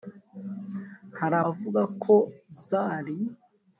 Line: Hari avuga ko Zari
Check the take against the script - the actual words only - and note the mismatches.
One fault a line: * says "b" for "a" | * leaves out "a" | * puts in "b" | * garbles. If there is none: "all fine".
all fine